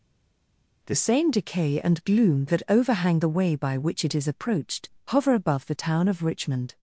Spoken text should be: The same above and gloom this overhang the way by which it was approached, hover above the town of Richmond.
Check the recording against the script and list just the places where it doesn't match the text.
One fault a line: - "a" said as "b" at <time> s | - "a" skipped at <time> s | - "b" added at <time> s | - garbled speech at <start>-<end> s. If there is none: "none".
- "above" said as "decay" at 1.3 s
- "this" said as "that" at 2.4 s
- "was" said as "is" at 4.1 s